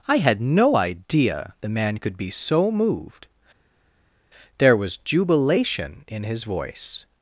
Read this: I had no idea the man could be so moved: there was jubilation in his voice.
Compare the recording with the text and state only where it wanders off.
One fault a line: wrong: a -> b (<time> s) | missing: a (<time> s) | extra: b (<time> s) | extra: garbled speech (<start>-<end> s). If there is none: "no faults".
no faults